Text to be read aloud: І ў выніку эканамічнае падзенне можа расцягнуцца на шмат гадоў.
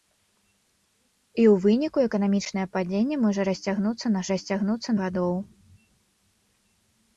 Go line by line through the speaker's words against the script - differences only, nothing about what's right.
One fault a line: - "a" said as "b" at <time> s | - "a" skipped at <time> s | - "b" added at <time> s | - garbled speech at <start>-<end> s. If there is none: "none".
- "шмат" said as "расцягнуцца" at 4.3 s